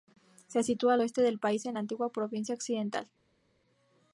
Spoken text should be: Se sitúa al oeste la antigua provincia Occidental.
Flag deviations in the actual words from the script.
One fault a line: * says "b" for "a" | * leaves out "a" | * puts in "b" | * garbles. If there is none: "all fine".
* puts in "del país en"